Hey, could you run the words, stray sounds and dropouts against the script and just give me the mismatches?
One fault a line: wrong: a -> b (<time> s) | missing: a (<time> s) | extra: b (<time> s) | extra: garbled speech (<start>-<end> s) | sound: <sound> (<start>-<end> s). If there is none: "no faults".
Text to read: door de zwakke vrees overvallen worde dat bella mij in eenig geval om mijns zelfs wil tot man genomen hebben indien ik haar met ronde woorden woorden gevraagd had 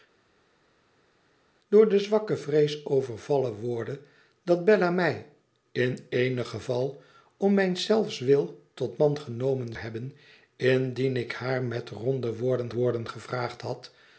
no faults